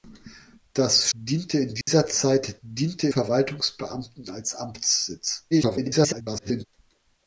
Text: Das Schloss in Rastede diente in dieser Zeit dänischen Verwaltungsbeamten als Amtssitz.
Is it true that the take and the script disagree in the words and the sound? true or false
true